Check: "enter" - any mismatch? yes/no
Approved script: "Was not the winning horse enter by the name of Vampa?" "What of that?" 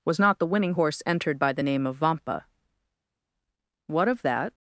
yes